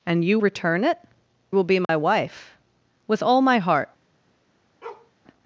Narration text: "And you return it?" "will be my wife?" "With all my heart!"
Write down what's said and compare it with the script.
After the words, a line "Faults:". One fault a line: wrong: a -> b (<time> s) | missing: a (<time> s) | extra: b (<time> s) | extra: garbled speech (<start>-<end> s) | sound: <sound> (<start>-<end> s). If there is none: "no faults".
"And you return it?" "will be my wife?" "With all my heart!"
Faults:
sound: dropout (1.8-1.9 s)
sound: bark (4.8-5.1 s)